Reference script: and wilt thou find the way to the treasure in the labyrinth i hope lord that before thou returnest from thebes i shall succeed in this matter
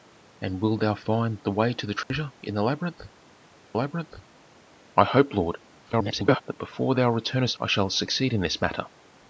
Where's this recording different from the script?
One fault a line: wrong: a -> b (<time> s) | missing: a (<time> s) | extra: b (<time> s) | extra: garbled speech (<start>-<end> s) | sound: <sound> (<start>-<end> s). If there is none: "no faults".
sound: dropout (2.0-2.1 s)
extra: labyrinth (3.7 s)
extra: garbled speech (5.9-6.4 s)
missing: from thebes (7.6 s)